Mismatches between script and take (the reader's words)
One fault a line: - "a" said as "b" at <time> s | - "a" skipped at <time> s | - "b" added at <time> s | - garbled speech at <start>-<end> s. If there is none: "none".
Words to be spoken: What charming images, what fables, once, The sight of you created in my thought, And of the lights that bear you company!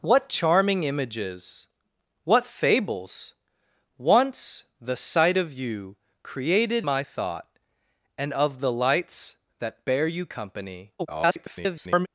- "in" skipped at 6.9 s
- garbled speech at 11.0-12.1 s